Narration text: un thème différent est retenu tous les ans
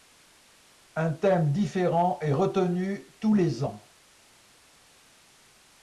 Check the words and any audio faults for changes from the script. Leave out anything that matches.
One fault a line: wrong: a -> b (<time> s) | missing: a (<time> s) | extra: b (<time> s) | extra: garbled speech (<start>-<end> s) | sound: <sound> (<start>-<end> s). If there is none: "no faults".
no faults